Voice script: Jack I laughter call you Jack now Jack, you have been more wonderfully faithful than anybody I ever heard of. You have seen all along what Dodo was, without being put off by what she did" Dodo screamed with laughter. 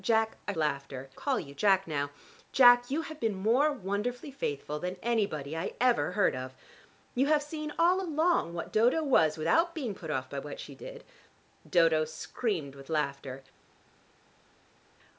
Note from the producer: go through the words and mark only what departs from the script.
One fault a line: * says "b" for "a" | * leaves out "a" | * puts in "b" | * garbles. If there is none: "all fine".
all fine